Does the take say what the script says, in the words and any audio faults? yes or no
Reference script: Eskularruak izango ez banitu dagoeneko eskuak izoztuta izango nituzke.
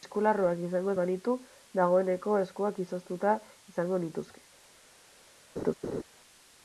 no